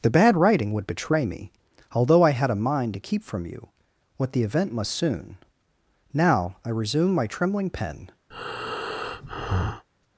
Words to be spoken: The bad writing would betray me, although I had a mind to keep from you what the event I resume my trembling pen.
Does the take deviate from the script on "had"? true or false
false